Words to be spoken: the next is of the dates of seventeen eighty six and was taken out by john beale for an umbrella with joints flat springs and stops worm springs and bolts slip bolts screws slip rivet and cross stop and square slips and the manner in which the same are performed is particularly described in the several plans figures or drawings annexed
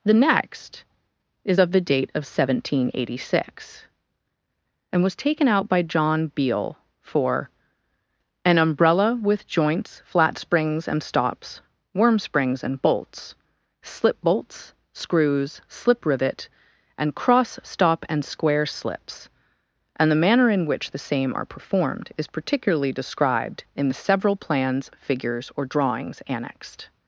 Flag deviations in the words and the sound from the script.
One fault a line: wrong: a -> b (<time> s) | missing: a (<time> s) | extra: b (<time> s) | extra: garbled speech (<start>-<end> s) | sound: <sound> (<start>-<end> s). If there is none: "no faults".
wrong: dates -> date (1.8 s)